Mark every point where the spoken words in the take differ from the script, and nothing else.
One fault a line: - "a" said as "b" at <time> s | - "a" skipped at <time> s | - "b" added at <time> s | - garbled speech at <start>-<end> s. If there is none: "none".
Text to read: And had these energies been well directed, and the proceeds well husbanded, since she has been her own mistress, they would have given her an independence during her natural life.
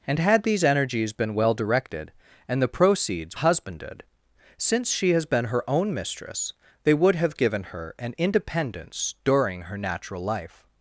- "well" skipped at 3.4 s